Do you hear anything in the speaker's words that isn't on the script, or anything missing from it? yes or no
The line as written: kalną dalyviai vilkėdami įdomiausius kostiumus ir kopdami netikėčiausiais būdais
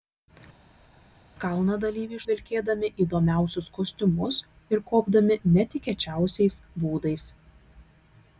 no